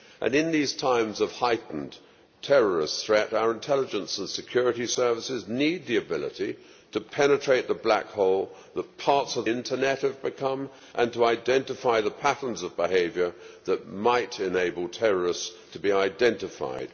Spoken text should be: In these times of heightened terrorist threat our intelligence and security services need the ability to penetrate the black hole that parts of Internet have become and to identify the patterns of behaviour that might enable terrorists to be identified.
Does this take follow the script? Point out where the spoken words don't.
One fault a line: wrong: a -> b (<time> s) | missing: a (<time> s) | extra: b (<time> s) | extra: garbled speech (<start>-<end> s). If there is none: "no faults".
no faults